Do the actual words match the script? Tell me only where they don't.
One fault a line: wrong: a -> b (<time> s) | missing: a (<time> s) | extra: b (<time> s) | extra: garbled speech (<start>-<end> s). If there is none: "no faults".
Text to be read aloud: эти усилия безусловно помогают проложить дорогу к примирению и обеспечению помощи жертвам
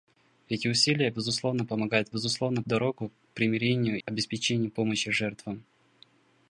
wrong: проложить -> безусловно (2.1 s)
missing: и (4.0 s)